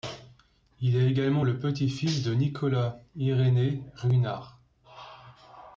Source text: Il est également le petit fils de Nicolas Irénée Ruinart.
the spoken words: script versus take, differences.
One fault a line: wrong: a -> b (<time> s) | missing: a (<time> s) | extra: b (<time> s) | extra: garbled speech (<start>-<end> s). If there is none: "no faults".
no faults